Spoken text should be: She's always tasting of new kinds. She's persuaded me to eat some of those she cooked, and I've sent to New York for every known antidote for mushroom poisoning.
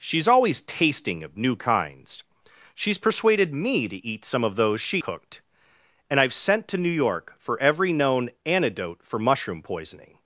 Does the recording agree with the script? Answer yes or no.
yes